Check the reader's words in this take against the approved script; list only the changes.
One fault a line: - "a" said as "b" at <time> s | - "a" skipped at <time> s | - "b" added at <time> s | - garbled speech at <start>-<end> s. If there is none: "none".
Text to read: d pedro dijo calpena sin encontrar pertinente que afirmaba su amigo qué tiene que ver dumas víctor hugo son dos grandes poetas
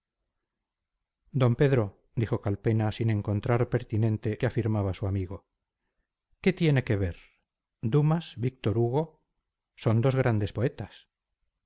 none